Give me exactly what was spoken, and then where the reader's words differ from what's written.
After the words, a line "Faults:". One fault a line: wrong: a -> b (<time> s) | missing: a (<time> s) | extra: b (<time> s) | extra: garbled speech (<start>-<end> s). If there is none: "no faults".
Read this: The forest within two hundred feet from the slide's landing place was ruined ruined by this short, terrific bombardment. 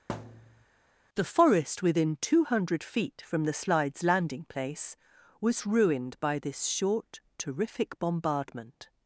The forest within two hundred feet from the slide's landing place was ruined by this short, terrific bombardment.
Faults:
missing: ruined (6.2 s)